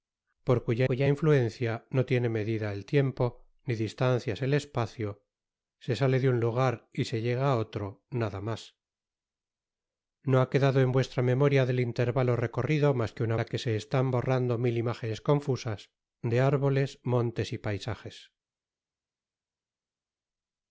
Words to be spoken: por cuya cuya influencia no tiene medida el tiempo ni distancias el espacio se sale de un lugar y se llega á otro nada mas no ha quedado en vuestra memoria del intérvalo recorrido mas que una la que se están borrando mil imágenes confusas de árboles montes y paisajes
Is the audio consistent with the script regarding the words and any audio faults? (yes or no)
yes